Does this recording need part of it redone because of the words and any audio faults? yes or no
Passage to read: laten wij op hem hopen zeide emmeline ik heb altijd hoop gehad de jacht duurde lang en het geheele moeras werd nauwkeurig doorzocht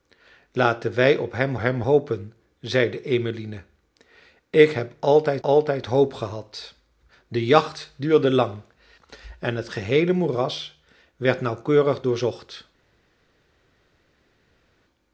yes